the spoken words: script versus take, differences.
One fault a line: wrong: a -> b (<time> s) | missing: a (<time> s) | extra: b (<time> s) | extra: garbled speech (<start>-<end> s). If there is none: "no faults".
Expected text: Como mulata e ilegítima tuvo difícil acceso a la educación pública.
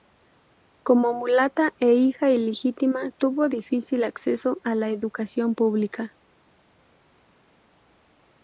extra: hija (1.9 s)